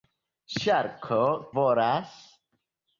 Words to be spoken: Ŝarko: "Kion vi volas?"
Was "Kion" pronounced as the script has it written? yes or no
no